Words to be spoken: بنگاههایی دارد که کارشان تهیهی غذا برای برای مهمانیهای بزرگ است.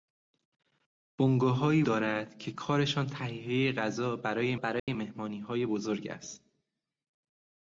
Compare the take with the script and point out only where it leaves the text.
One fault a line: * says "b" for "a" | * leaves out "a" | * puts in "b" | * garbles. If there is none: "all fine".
all fine